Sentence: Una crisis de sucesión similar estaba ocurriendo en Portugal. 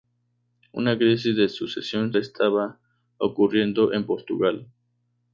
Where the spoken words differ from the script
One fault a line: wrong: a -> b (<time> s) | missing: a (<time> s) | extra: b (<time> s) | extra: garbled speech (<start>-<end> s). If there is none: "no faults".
missing: similar (2.1 s)